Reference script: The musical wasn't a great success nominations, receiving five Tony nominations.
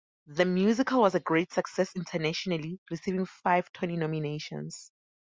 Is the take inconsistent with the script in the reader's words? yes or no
yes